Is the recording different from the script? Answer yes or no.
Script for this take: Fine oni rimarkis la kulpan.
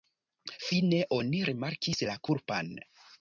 no